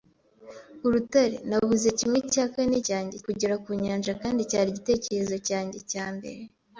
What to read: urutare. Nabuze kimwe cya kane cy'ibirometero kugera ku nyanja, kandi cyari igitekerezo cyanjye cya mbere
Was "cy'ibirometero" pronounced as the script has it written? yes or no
no